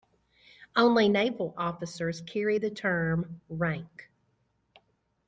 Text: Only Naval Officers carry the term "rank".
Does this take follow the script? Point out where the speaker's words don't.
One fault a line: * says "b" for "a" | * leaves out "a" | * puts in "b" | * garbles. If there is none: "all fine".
all fine